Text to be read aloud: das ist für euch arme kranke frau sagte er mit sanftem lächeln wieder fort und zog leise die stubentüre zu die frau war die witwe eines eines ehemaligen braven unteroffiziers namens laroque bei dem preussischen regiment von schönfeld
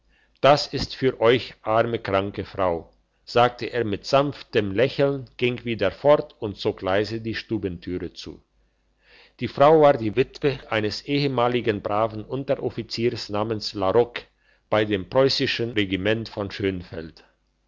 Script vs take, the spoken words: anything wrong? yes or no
yes